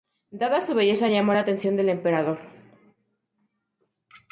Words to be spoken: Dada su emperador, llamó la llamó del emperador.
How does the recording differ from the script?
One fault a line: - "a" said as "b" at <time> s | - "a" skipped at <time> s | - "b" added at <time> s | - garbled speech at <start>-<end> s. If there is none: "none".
- "emperador" said as "belleza" at 0.7 s
- "llamó" said as "atención" at 1.4 s